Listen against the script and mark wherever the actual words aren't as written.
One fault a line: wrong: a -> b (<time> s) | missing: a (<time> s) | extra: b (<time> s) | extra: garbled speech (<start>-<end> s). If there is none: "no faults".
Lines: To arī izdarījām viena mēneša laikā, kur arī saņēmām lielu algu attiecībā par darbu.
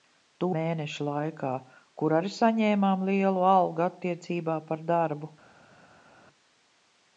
missing: arī izdarījām viena (0.5 s)